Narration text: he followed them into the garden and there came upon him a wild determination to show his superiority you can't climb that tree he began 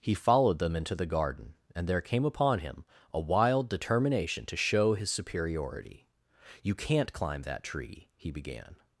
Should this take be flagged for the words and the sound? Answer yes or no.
no